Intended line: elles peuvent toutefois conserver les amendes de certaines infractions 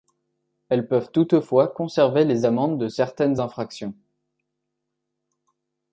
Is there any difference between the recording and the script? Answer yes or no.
no